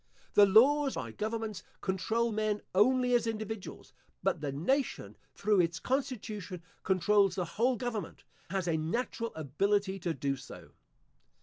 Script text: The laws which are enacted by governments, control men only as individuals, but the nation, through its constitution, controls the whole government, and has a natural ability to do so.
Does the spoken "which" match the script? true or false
false